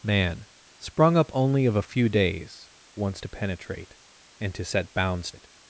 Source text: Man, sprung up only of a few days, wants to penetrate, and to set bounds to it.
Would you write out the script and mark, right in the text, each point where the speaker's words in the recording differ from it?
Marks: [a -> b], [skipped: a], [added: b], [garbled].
Man, sprung up only of a few days, wants to penetrate, and to set bounds [skipped: to] it.